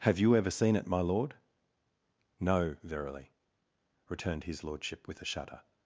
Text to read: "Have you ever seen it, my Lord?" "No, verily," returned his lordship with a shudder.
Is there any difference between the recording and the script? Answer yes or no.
no